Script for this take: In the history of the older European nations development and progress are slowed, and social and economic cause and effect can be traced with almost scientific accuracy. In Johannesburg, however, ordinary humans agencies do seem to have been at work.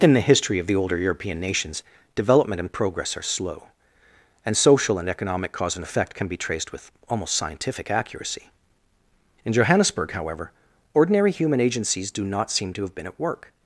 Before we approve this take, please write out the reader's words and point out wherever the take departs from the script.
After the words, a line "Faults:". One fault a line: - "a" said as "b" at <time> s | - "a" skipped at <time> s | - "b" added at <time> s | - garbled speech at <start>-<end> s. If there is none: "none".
In the history of the older European nations development and progress are slow, and social and economic cause and effect can be traced with almost scientific accuracy. In Johannesburg, however, ordinary human agencies do not seem to have been at work.
Faults:
- "slowed" said as "slow" at 3.2 s
- "humans" said as "human" at 11.3 s
- "not" added at 12.2 s